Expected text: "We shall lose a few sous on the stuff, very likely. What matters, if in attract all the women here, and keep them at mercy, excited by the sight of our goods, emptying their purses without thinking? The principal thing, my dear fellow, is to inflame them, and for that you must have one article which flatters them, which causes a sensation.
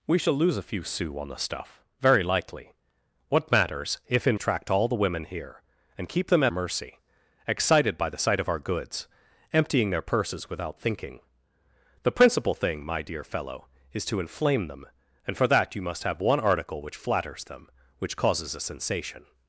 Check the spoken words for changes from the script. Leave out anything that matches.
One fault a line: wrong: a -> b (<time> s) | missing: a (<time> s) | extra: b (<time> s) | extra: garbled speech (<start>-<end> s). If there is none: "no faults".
no faults